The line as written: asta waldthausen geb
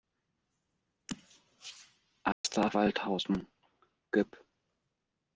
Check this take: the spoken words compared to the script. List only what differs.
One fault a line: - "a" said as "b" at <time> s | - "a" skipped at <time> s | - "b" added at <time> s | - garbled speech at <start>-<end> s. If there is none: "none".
none